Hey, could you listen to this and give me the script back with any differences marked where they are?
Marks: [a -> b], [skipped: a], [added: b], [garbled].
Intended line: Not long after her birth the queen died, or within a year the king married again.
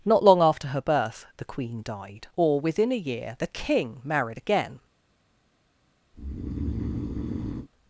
Not long after her birth the queen died, or within a year the king married again.